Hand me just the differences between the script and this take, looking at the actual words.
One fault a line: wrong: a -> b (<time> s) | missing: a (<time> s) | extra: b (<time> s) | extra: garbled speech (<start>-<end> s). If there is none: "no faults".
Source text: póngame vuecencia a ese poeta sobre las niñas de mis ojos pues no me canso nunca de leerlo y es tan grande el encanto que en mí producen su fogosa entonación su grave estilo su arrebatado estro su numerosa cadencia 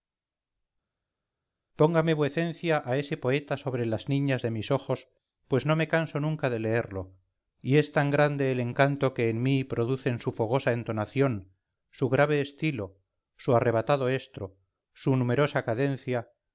no faults